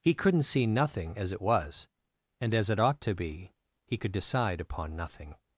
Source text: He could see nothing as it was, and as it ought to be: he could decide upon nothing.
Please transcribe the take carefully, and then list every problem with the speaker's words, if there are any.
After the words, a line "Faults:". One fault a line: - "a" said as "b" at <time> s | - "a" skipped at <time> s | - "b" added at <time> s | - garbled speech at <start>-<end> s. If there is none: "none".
He couldn't see nothing as it was, and as it ought to be: he could decide upon nothing.
Faults:
- "could" said as "couldn't" at 0.1 s